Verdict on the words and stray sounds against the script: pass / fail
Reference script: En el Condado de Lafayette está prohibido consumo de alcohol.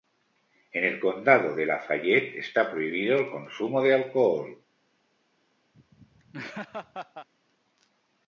fail